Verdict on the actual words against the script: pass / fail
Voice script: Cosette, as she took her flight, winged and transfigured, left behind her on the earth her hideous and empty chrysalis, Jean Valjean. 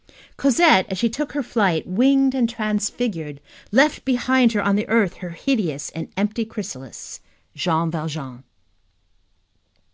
pass